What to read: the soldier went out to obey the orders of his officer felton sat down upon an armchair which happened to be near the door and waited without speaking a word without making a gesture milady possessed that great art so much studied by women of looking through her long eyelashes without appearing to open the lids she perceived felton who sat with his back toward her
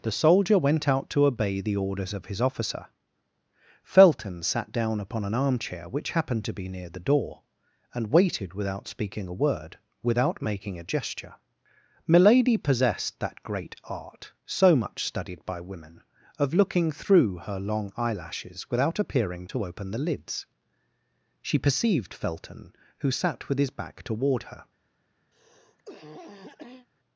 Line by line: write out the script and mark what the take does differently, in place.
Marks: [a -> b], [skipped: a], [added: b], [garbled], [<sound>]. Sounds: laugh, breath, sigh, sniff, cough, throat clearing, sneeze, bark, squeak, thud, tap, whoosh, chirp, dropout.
the soldier went out to obey the orders of his officer felton sat down upon an armchair which happened to be near the door and waited without speaking a word without making a gesture milady possessed that great art so much studied by women of looking through her long eyelashes without appearing to open the lids she perceived felton who sat with his back toward her [cough]